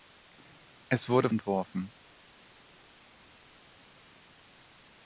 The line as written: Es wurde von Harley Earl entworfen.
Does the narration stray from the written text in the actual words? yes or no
yes